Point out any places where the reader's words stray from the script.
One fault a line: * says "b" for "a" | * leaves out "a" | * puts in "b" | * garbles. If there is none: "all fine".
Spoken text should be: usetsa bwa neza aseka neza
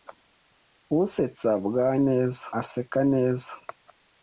all fine